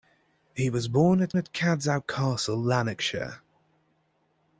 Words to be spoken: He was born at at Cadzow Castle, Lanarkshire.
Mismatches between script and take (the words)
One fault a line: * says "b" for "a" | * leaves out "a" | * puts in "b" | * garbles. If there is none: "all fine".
all fine